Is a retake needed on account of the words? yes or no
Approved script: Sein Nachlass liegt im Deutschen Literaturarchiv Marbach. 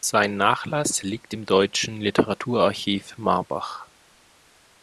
no